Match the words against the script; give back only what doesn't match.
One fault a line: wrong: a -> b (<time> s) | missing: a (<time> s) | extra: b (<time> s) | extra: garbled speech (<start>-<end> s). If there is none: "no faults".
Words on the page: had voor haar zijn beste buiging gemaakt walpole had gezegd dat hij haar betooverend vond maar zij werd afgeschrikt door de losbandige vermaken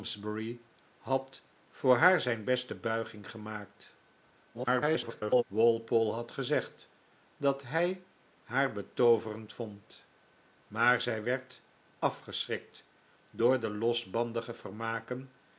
extra: garbled speech (4.5-5.4 s)